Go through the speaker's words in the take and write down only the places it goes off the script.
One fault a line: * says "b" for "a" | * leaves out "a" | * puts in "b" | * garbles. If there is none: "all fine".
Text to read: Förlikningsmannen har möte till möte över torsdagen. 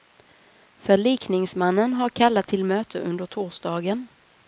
* says "kallat" for "möte"
* says "under" for "över"